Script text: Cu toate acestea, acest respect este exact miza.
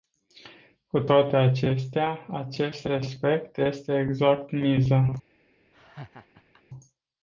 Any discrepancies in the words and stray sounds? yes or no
yes